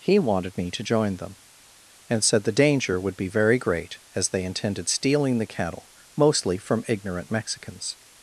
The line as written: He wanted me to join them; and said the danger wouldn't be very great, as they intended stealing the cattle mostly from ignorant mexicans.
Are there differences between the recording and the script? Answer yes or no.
yes